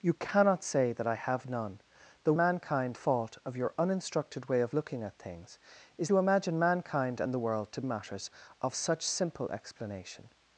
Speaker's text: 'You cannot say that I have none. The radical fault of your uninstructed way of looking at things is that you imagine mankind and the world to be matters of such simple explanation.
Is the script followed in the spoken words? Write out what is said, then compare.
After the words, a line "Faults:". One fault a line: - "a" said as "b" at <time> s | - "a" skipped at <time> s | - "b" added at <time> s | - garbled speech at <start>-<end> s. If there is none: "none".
'You cannot say that I have none. The mankind fault of your uninstructed way of looking at things is you imagine mankind and the world to matters of such simple explanation.
Faults:
- "radical" said as "mankind" at 2.4 s
- "that" skipped at 6.1 s
- "be" skipped at 7.8 s